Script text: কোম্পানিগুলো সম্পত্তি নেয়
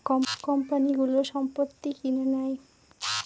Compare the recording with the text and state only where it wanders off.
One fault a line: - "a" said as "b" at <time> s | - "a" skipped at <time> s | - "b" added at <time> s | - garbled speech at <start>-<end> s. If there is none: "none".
- "কিনে" added at 2.0 s